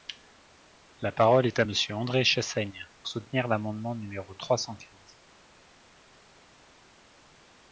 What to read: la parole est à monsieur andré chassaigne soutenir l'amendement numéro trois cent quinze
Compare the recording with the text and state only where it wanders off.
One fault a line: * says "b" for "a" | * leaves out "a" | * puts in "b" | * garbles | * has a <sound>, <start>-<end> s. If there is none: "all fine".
all fine